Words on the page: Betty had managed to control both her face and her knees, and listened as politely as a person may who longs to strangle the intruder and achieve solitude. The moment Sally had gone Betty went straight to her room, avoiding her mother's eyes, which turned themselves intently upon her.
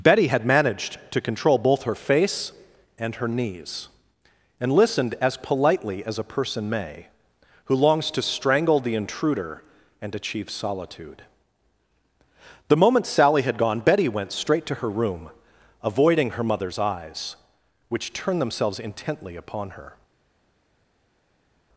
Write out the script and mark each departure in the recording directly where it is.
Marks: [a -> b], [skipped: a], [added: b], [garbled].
Betty had managed to control both her face and her knees, and listened as politely as a person may who longs to strangle the intruder and achieve solitude. The moment Sally had gone Betty went straight to her room, avoiding her mother's eyes, which turned themselves intently upon her.